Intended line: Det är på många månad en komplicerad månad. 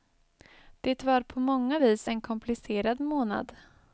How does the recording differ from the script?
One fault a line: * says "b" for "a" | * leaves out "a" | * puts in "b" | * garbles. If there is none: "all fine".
* says "var" for "är"
* says "vis" for "månad"